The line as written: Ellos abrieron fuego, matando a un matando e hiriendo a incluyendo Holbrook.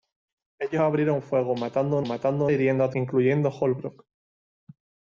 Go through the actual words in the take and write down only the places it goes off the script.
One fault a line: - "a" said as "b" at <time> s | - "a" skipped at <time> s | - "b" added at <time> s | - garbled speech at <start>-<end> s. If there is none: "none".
none